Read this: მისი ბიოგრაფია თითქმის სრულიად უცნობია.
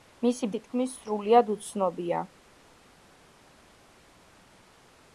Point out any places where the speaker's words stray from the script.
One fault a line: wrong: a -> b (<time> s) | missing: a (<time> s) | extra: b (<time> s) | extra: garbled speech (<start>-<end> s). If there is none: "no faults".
missing: ბიოგრაფია (0.5 s)